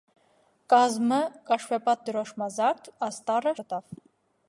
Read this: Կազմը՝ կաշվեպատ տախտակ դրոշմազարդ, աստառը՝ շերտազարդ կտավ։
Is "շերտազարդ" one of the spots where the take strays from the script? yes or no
yes